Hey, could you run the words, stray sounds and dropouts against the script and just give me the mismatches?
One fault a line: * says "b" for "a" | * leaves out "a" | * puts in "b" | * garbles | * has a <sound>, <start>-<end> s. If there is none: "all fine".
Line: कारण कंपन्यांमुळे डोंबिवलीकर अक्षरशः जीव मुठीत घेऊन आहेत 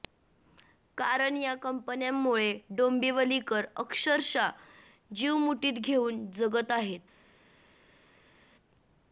* puts in "या"
* puts in "जगत"